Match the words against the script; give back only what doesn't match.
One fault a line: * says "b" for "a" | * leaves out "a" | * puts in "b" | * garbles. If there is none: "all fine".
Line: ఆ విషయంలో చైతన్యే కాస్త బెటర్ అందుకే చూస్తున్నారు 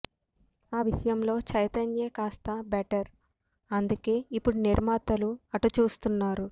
* puts in "ఇప్పుడు నిర్మాతలు అటు"